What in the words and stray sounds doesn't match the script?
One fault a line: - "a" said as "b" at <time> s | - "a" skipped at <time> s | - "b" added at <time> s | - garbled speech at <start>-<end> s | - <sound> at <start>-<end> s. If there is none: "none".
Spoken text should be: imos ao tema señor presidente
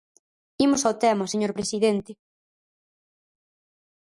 none